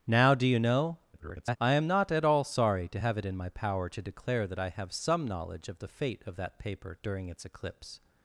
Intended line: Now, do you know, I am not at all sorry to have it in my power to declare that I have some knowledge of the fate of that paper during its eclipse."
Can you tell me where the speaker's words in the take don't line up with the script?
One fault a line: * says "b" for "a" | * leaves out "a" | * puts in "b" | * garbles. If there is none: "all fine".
* garbles